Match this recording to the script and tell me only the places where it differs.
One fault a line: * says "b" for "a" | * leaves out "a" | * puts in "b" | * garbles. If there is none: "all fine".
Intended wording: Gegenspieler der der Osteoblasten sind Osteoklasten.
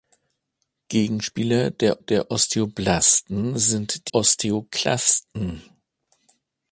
all fine